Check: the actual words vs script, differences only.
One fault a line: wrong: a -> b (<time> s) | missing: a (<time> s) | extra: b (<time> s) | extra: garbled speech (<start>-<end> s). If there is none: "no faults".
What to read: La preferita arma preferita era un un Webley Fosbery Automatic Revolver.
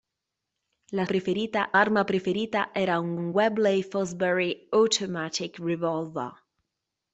no faults